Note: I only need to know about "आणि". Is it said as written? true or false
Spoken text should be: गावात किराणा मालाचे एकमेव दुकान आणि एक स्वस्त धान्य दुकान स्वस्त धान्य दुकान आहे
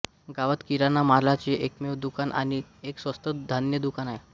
true